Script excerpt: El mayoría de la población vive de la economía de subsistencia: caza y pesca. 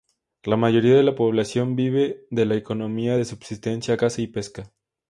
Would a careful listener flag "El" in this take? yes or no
yes